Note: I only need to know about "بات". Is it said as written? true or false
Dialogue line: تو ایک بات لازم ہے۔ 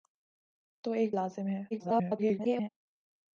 false